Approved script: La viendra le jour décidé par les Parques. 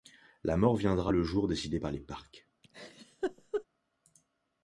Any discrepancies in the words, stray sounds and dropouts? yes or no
yes